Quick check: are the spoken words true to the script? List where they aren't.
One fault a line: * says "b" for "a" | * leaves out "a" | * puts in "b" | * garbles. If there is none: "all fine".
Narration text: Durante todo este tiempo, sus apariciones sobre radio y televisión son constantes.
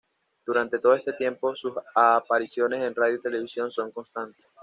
* says "en" for "sobre"